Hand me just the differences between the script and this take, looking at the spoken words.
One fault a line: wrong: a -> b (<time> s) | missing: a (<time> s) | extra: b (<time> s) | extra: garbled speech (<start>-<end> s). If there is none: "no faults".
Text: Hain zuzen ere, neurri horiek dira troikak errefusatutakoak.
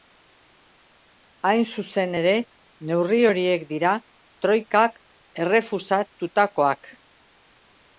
no faults